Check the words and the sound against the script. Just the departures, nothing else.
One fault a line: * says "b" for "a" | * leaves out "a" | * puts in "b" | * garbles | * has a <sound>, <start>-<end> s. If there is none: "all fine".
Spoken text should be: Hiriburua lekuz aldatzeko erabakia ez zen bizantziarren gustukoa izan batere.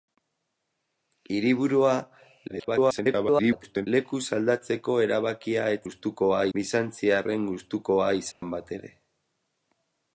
* garbles
* says "gustukoa" for "zen"
* has a dropout, 8.3-8.4 s